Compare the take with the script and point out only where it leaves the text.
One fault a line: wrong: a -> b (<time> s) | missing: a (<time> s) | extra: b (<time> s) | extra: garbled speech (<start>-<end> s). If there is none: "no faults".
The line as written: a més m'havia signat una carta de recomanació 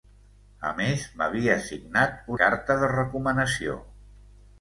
missing: una (2.3 s)